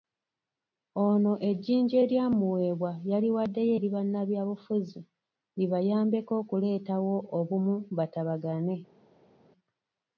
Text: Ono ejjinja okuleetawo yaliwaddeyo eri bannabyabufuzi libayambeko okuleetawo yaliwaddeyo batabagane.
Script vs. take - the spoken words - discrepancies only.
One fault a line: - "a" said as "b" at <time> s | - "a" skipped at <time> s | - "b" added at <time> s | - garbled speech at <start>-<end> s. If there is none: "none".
- "okuleetawo" said as "eryamuweebwa" at 2.0 s
- "yaliwaddeyo" said as "obumu" at 7.4 s